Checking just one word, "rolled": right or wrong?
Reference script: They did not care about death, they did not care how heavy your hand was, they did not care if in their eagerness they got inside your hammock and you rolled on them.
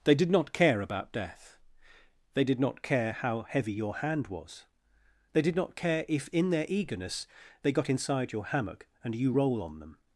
wrong